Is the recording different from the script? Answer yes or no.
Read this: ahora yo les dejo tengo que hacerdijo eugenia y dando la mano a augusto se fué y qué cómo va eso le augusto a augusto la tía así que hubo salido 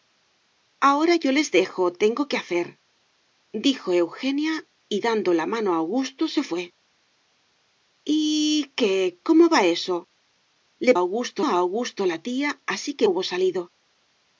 no